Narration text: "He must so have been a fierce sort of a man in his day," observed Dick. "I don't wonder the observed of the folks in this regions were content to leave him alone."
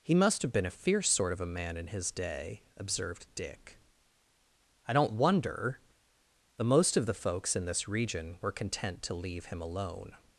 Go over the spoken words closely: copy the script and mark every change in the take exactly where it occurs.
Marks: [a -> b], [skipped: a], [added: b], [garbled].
"He must [skipped: so] have been a fierce sort of a man in his day," observed Dick. "I don't wonder the [observed -> most] of the folks in this [regions -> region] were content to leave him alone."